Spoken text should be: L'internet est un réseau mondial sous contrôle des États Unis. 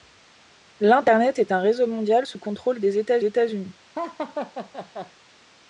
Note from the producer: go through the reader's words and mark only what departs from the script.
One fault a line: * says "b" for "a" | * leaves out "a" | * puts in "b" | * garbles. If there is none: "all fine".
* puts in "États"